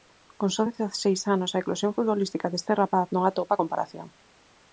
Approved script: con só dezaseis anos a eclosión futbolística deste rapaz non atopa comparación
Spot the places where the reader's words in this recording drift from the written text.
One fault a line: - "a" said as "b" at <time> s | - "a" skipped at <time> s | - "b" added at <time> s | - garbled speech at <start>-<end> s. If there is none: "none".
none